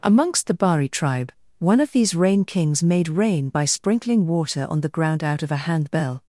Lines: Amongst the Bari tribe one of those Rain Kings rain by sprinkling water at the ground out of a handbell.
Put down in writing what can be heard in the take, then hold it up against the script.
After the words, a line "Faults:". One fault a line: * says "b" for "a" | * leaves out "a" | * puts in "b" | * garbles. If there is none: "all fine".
Amongst the Bari tribe one of these Rain Kings made rain by sprinkling water on the ground out of a handbell.
Faults:
* says "these" for "those"
* puts in "made"
* says "on" for "at"